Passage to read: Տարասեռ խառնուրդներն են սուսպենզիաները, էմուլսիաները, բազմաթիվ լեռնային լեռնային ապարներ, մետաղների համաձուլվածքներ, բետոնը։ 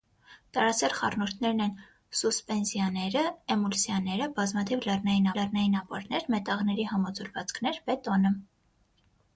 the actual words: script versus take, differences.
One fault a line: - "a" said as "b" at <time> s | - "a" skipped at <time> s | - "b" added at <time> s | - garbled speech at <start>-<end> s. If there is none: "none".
none